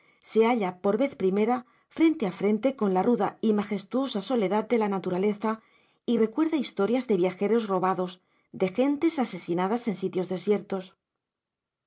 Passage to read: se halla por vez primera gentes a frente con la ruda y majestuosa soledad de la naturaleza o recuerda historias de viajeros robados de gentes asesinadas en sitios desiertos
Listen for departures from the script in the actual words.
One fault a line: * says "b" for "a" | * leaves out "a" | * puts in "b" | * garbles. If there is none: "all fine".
* says "frente" for "gentes"
* says "y" for "o"